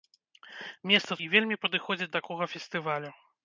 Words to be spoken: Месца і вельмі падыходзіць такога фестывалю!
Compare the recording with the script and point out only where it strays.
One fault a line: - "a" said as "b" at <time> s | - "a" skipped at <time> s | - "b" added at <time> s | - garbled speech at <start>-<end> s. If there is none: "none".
none